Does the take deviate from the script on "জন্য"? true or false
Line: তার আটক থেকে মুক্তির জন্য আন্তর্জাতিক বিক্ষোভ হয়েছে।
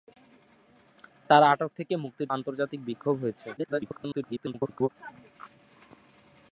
true